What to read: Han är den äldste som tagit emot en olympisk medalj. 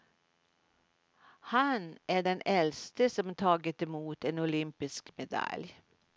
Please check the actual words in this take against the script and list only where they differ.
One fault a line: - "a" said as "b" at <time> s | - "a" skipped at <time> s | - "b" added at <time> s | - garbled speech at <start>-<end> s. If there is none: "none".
none